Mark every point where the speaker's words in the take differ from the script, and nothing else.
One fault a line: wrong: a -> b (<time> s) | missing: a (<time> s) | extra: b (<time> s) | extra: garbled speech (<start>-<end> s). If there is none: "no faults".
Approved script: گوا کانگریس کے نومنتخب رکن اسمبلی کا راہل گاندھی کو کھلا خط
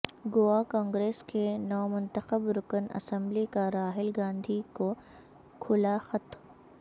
no faults